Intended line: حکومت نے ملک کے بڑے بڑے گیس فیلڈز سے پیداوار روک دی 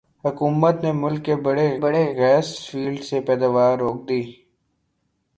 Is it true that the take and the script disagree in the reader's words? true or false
false